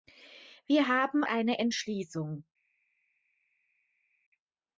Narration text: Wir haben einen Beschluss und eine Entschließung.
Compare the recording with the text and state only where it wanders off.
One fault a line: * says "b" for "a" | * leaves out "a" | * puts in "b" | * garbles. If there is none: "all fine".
* leaves out "einen Beschluss und"